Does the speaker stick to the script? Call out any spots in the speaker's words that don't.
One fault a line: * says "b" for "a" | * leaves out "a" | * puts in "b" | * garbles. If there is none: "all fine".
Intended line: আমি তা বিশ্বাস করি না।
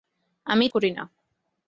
* leaves out "তা বিশ্বাস"